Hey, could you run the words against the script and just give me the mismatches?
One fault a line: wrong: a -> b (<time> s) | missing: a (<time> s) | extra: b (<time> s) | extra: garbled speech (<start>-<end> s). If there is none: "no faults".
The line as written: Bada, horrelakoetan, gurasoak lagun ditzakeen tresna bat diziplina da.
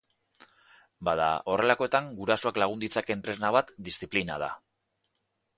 no faults